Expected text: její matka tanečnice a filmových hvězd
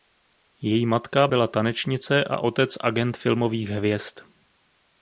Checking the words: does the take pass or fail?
fail